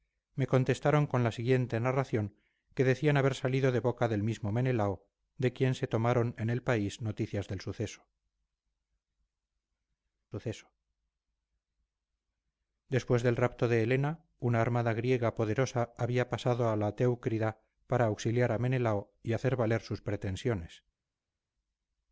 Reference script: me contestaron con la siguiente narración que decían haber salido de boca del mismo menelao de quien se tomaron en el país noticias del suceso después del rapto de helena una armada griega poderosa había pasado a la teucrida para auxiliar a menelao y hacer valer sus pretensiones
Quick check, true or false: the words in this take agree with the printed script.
false